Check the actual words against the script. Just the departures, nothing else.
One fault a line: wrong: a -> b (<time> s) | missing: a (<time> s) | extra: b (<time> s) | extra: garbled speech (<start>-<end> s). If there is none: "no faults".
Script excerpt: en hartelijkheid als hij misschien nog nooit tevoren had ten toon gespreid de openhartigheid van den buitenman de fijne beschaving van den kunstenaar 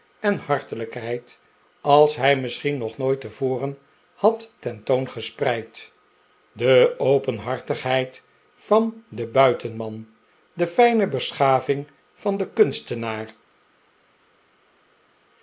no faults